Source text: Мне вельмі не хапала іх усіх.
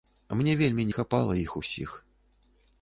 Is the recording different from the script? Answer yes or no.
no